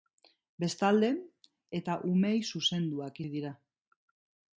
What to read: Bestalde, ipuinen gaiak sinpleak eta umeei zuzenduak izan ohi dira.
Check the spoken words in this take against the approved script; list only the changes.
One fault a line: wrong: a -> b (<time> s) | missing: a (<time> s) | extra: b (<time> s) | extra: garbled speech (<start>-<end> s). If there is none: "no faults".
missing: ipuinen gaiak sinpleak (1.1 s)
missing: izan (3.2 s)